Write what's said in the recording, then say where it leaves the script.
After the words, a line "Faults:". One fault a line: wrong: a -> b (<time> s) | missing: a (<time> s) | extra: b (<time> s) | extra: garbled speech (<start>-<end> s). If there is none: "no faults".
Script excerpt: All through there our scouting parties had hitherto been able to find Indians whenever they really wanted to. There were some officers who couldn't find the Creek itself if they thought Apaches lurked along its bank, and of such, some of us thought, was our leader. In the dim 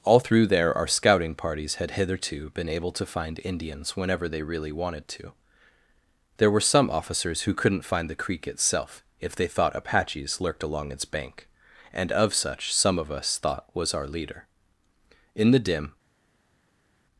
All through there our scouting parties had hitherto been able to find Indians whenever they really wanted to. There were some officers who couldn't find the Creek itself if they thought Apaches lurked along its bank, and of such, some of us thought, was our leader. In the dim
Faults:
no faults